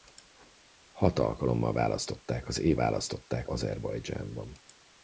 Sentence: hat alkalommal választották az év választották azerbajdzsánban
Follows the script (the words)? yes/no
yes